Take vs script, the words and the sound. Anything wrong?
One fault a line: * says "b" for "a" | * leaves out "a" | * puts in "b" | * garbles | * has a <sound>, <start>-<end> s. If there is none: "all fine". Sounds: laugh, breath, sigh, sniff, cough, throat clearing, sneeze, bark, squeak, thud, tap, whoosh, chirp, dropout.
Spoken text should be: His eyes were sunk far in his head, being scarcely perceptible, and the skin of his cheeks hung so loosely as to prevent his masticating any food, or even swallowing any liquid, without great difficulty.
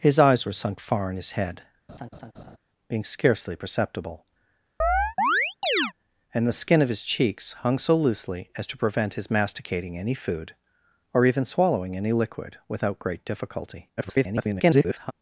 * has a laugh, 1.9-2.6 s
* has a chirp, 4.8-5.9 s
* garbles